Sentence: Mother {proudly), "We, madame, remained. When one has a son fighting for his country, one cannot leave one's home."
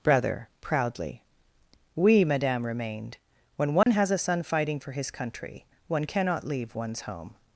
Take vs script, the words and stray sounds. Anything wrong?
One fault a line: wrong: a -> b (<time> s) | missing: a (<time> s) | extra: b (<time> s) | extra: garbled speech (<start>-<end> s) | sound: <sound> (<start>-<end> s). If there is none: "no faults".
wrong: Mother -> Brother (0.0 s)
sound: dropout (3.8-3.9 s)